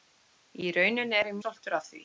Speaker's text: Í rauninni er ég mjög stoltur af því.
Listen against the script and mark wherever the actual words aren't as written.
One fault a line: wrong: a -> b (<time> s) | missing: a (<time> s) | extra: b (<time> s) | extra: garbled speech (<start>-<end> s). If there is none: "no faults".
missing: mjög (1.4 s)